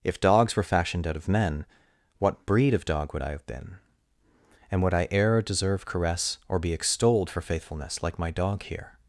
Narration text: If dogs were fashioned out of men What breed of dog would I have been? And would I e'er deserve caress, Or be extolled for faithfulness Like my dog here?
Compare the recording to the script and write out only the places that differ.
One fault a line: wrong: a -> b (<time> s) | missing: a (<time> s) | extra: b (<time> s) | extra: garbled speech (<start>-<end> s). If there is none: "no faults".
no faults